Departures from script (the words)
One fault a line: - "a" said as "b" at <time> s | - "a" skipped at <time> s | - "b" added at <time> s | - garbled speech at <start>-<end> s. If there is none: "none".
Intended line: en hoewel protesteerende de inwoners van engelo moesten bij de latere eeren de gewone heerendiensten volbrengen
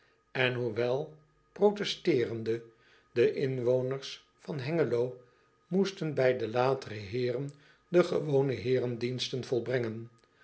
none